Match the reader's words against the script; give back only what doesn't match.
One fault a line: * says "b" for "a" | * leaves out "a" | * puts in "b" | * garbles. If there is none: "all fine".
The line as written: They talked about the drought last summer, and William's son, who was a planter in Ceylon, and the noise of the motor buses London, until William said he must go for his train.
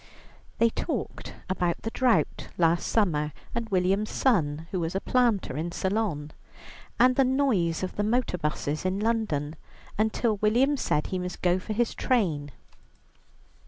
* puts in "in"